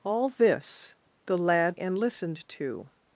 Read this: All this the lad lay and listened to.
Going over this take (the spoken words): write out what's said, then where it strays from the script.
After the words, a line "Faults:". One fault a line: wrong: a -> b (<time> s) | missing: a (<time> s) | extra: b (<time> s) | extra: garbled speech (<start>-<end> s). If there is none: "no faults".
All this the lad and listened to.
Faults:
missing: lay (1.8 s)